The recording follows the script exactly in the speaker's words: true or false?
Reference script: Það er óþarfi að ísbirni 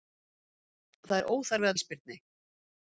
true